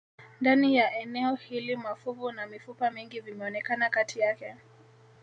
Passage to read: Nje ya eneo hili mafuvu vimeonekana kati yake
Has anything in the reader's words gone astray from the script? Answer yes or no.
yes